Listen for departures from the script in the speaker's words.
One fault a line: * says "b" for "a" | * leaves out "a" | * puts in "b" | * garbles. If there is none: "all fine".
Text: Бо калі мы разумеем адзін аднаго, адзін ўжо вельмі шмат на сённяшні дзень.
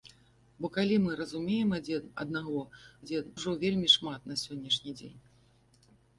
all fine